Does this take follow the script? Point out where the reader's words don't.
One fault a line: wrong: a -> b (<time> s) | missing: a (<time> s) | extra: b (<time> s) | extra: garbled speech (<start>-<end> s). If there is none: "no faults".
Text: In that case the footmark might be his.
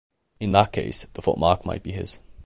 no faults